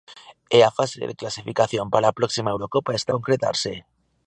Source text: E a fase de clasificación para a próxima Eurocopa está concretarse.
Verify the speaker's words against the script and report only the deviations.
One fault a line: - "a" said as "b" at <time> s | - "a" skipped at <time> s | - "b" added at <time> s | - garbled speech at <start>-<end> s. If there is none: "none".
none